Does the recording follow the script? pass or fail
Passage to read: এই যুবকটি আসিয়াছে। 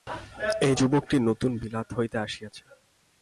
fail